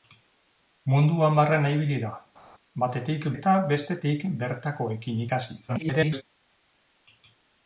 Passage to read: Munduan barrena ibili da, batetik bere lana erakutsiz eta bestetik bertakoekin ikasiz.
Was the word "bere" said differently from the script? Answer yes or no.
yes